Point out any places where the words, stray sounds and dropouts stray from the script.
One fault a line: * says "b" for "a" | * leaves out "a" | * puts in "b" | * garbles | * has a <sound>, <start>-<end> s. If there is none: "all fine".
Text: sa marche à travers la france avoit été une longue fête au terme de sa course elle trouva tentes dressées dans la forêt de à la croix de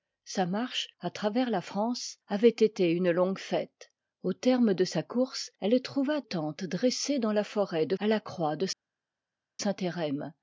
all fine